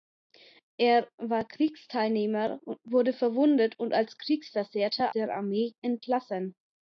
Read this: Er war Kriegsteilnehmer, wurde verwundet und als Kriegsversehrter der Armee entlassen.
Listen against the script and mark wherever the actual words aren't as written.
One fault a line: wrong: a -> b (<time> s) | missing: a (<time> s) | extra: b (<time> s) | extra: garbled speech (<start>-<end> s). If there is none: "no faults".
no faults